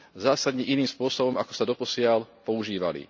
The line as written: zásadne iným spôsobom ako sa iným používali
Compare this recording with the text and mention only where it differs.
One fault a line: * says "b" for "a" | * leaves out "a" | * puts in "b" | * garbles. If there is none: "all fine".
* says "doposiaľ" for "iným"